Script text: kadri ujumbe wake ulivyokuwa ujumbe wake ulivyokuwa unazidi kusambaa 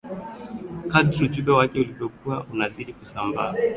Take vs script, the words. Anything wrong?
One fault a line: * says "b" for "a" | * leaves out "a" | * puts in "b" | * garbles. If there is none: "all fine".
* leaves out "ujumbe wake ulivyokuwa"